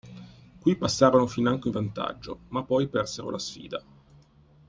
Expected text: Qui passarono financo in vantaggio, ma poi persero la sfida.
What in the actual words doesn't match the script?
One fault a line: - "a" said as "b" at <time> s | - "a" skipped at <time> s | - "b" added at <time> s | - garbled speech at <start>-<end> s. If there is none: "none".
none